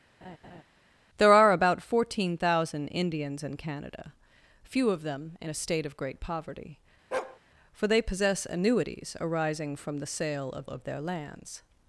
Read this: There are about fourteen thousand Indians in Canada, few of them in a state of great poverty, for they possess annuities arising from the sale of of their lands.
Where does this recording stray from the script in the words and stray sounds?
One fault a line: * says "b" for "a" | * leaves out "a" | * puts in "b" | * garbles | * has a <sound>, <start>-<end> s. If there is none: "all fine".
* has a laugh, 0.2-0.6 s
* has a bark, 7.1-7.4 s